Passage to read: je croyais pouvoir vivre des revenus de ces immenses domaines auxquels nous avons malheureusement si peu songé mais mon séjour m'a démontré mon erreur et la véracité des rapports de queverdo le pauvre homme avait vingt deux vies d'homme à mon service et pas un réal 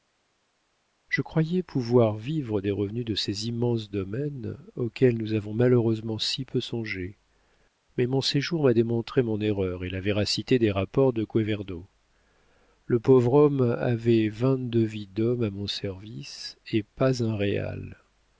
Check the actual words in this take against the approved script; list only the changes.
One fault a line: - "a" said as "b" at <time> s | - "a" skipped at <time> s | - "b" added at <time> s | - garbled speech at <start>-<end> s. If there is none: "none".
none